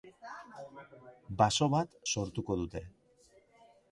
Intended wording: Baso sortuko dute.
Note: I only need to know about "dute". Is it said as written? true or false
true